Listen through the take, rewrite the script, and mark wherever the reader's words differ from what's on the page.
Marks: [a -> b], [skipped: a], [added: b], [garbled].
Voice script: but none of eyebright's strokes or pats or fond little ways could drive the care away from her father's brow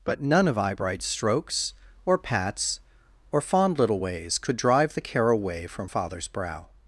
but none of eyebright's strokes or pats or fond little ways could drive the care away from [skipped: her] father's brow